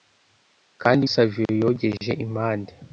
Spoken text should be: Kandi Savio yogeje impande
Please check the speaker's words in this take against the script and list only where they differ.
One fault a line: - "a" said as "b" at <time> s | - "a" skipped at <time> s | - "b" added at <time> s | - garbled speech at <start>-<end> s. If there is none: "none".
none